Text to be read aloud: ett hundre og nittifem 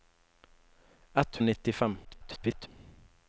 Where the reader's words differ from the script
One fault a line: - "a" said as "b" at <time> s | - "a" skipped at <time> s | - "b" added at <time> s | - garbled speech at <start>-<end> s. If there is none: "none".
- "hundre" skipped at 1.4 s
- garbled speech at 2.0-2.7 s